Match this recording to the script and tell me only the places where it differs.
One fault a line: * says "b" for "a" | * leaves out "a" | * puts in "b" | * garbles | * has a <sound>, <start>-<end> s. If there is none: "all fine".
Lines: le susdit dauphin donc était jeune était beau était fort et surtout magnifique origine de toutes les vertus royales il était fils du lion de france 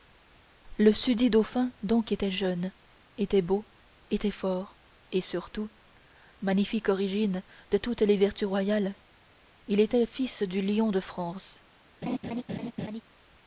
* has a laugh, 12.0-13.0 s